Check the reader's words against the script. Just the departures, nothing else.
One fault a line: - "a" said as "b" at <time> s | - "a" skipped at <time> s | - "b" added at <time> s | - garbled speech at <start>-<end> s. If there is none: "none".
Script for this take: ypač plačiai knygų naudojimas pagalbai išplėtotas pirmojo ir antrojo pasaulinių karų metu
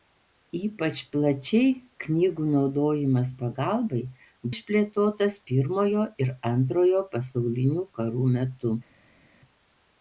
none